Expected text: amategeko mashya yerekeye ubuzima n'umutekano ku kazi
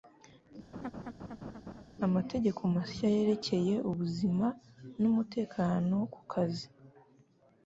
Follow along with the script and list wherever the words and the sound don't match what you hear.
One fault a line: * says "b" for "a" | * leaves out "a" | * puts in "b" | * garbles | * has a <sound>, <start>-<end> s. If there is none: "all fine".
* has a laugh, 0.7-1.8 s